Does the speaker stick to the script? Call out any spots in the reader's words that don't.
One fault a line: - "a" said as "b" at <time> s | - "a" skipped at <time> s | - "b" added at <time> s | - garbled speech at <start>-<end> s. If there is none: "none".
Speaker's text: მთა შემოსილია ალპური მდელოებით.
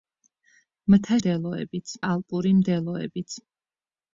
- "შემოსილია" said as "მდელოებით" at 1.2 s